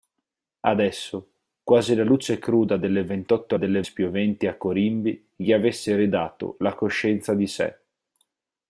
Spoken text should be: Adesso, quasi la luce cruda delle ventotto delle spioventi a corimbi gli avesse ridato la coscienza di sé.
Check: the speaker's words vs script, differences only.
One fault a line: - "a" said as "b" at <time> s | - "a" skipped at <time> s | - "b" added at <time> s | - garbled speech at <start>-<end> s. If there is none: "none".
none